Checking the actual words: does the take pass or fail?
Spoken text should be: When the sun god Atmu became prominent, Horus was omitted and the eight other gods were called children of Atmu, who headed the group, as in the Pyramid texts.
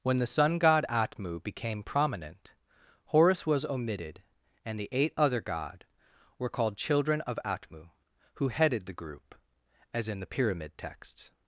fail